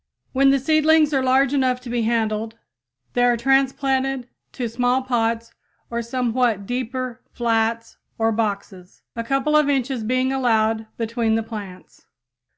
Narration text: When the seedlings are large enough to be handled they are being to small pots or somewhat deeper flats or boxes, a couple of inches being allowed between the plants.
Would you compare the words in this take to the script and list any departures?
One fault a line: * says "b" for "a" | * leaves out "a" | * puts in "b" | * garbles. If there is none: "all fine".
* says "transplanted" for "being"